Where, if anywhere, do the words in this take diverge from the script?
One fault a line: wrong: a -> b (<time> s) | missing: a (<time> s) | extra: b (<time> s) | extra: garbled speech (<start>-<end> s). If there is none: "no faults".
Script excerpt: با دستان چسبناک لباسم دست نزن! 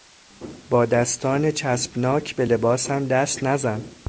extra: به (2.4 s)